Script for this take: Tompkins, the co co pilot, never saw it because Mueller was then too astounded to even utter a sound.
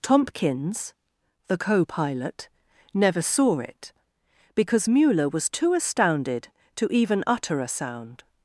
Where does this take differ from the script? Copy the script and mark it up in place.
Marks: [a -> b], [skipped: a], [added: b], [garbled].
Tompkins, the co [skipped: co] pilot, never saw it because Mueller was [skipped: then] too astounded to even utter a sound.